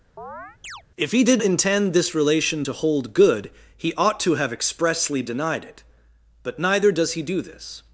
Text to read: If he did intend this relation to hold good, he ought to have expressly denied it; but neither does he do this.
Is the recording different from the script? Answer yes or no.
no